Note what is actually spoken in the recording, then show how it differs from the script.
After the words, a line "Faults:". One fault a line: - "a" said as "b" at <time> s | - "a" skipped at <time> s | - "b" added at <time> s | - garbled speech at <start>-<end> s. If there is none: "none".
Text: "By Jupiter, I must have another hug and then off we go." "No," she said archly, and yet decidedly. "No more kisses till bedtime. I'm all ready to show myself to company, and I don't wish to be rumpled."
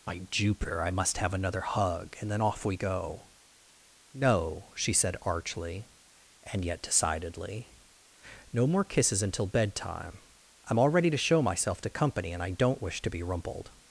"By Jupiter, I must have another hug and then off we go." "No," she said archly, and yet decidedly. "No more kisses until bedtime. I'm all ready to show myself to company, and I don't wish to be rumpled."
Faults:
- "till" said as "until" at 9.2 s